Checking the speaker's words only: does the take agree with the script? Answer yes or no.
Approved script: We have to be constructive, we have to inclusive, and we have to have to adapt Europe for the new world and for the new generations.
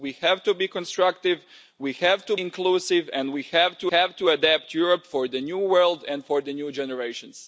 yes